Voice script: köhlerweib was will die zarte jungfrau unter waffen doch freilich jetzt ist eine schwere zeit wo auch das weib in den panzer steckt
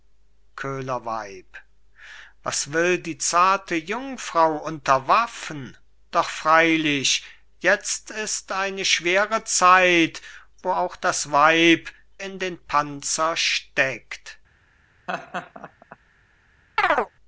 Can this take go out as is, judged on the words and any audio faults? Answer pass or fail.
fail